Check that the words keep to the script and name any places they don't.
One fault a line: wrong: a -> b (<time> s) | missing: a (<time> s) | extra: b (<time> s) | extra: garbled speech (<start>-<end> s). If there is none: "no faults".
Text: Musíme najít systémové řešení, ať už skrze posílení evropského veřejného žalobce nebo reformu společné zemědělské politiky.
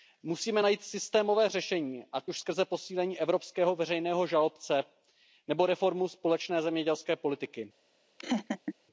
no faults